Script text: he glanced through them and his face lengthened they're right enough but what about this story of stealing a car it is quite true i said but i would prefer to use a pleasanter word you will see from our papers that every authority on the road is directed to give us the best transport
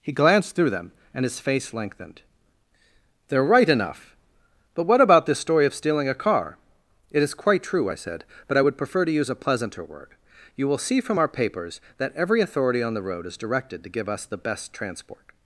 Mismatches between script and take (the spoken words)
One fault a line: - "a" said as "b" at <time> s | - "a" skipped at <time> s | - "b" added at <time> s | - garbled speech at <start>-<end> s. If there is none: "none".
none